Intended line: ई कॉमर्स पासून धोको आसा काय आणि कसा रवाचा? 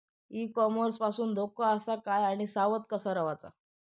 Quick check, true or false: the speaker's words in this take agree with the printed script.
false